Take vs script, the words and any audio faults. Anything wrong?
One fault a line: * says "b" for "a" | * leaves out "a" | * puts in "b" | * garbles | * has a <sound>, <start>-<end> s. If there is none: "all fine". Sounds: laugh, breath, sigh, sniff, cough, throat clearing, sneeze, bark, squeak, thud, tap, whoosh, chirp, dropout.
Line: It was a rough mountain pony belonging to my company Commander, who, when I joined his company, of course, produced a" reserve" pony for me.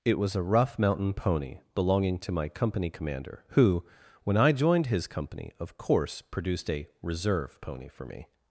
all fine